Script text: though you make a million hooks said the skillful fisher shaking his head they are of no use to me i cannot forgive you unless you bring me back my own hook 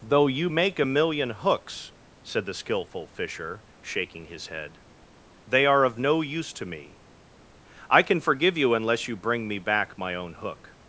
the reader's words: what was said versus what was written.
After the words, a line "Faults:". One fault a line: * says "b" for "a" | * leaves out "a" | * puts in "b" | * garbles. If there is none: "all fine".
though you make a million hooks said the skillful fisher shaking his head they are of no use to me i can forgive you unless you bring me back my own hook
Faults:
* says "can" for "cannot"